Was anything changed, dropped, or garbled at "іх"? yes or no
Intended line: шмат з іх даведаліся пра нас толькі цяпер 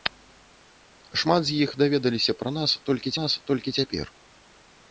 no